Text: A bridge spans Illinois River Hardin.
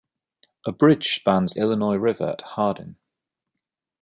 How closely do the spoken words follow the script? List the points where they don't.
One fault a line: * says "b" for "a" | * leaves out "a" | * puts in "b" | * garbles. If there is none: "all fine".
all fine